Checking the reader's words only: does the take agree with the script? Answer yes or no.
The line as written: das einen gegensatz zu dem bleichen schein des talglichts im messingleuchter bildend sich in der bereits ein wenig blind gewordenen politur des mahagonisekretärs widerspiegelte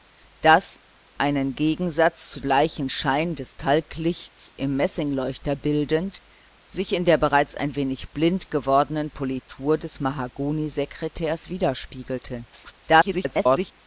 no